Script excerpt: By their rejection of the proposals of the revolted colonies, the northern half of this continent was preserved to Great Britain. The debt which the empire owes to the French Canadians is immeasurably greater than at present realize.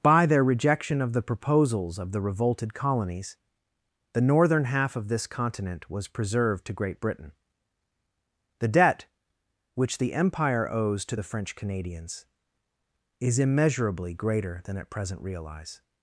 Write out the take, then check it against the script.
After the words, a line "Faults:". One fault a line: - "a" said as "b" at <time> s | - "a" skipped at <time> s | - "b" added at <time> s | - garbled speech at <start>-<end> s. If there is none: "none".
By their rejection of the proposals of the revolted colonies, the northern half of this continent was preserved to Great Britain. The debt which the empire owes to the French Canadians is immeasurably greater than at present realize.
Faults:
none